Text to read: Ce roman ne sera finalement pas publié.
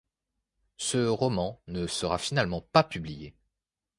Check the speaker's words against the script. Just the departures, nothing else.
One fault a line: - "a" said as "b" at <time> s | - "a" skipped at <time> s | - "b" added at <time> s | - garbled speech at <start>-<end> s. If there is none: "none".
none